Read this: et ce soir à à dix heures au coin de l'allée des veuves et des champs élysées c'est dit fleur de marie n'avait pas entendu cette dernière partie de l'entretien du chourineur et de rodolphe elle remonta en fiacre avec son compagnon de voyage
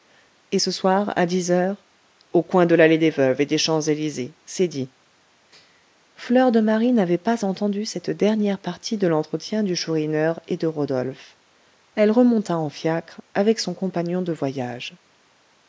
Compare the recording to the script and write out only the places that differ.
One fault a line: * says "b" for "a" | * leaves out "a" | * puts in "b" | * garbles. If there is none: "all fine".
* leaves out "à"